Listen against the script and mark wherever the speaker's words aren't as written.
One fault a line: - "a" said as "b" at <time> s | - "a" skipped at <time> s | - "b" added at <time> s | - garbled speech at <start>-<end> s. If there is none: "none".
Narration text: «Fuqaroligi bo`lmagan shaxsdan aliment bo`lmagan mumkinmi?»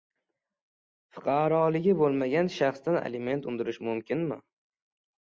- "bo`lmagan" said as "undirish" at 3.5 s